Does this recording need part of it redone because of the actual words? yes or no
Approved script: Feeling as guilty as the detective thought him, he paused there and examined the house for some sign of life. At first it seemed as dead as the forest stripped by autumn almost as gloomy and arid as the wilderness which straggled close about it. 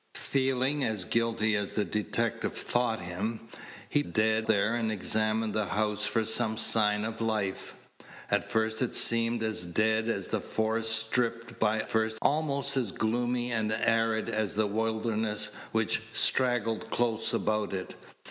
yes